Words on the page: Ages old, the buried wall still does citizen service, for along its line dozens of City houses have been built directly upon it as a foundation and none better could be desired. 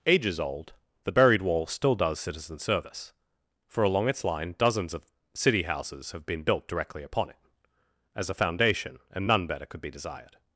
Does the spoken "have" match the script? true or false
true